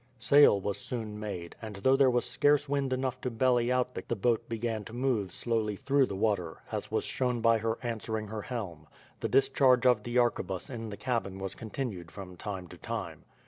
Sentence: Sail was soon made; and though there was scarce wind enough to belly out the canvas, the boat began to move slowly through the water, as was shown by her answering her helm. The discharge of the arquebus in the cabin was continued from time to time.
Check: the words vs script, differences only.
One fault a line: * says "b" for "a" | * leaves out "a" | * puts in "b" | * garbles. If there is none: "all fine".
* leaves out "canvas"